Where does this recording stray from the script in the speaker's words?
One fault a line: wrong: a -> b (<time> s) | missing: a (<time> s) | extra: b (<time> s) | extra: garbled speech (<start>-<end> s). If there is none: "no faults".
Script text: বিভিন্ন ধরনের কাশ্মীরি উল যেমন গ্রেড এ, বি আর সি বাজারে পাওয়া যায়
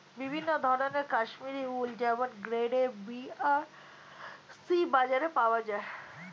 no faults